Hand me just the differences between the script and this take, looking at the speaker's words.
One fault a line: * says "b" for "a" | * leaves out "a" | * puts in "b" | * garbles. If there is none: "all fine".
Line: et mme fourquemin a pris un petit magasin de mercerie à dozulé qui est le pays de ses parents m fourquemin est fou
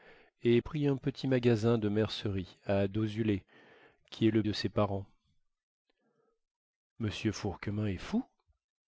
* leaves out "mme fourquemin a"
* leaves out "pays"